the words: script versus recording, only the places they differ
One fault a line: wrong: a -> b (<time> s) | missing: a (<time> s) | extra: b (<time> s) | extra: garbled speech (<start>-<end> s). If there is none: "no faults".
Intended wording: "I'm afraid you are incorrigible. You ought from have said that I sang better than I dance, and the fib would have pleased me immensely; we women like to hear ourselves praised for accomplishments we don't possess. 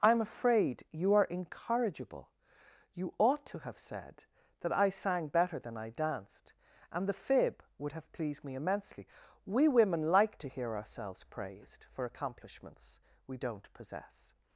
wrong: from -> to (3.5 s)
wrong: dance -> danced (5.9 s)